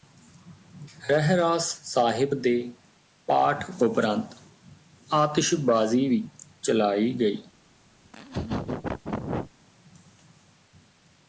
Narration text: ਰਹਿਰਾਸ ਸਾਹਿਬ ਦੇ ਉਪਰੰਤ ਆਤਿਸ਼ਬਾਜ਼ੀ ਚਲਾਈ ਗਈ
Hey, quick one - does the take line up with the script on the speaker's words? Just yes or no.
no